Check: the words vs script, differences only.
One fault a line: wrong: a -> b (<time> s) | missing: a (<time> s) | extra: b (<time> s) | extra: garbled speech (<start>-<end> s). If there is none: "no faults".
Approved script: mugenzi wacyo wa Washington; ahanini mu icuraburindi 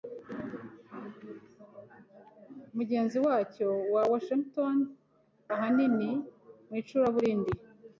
no faults